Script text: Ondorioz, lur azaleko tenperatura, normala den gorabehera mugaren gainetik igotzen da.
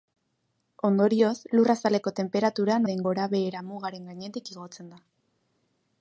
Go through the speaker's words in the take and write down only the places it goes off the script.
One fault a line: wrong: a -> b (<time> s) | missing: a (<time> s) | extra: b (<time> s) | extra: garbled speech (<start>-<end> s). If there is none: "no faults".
missing: normala (2.8 s)